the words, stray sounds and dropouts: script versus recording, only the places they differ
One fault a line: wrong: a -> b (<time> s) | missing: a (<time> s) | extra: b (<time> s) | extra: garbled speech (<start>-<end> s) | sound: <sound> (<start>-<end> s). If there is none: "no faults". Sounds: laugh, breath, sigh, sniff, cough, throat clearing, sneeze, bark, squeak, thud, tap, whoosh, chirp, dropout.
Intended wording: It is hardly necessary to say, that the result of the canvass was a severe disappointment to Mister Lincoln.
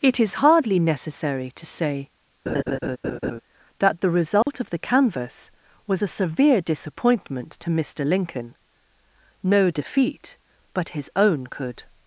sound: laugh (2.5-3.4 s)
sound: dropout (4.4-4.5 s)
extra: No defeat but his own could (9.4 s)